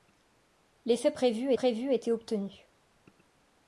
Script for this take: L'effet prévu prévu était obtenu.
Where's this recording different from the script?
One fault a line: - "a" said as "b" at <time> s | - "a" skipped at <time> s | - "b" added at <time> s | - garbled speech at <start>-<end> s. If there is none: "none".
none